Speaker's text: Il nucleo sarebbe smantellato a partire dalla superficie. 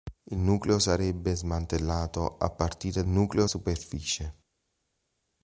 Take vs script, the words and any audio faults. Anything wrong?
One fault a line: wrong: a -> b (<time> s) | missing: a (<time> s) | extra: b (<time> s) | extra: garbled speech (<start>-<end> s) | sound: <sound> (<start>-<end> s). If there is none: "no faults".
wrong: dalla -> nucleo (3.1 s)